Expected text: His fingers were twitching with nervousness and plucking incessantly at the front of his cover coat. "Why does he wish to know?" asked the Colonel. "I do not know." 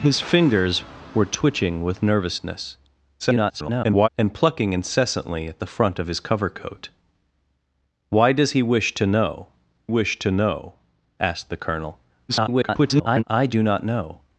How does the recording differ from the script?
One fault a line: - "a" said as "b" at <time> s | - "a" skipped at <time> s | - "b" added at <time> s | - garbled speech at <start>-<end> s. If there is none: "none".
- garbled speech at 3.2-4.1 s
- "wish to know" added at 9.9 s
- garbled speech at 12.3-13.2 s